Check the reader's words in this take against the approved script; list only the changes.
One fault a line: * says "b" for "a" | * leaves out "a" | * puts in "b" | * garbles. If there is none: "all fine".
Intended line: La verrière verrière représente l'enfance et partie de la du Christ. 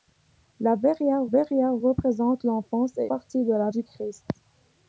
all fine